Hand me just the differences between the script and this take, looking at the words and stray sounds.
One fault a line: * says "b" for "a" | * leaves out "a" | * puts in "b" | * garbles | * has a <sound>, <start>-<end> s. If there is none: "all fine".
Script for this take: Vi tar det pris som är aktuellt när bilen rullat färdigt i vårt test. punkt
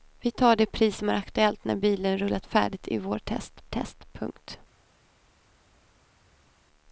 * puts in "test"